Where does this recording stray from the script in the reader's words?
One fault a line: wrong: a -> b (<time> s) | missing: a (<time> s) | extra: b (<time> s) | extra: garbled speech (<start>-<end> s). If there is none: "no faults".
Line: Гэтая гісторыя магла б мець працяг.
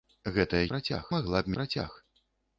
wrong: гісторыя -> працяг (0.7 s)
missing: мець (1.6 s)